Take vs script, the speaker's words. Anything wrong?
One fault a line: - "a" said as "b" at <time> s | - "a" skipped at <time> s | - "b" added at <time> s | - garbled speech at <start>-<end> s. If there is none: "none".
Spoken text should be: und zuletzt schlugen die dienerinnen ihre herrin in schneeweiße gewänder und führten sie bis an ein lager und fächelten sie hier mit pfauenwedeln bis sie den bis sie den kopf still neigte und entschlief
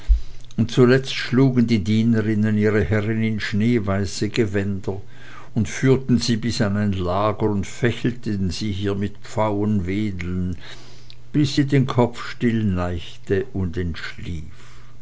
- "bis sie den" skipped at 11.9 s